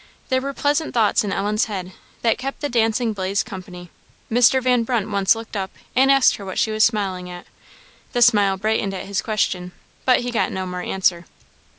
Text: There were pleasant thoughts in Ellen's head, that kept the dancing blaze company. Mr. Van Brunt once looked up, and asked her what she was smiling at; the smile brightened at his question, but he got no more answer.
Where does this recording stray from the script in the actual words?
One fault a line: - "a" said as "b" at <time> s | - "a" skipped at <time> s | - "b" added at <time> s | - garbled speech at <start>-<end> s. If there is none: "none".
none